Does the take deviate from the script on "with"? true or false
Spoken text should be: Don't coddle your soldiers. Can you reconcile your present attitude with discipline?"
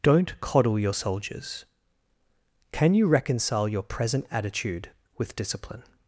false